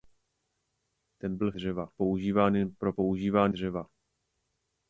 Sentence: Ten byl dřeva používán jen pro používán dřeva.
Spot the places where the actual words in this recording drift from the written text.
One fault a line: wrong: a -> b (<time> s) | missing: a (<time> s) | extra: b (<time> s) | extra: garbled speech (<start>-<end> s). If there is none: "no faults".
no faults